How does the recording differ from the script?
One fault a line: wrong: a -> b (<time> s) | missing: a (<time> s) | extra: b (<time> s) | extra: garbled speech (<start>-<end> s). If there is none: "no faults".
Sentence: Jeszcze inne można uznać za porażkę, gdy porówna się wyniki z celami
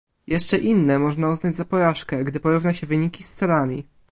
no faults